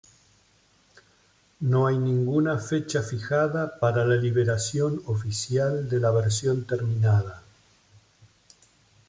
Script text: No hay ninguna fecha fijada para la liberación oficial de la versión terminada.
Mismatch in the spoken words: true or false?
false